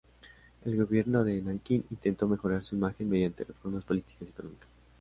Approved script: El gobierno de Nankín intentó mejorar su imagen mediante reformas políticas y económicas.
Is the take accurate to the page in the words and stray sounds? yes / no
yes